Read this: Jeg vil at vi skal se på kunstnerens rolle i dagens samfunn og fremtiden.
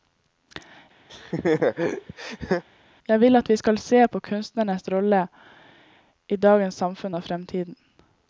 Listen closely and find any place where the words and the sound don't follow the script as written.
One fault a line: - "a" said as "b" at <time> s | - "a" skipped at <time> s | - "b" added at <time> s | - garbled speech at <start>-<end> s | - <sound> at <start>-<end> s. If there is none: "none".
- laugh at 1.1-2.6 s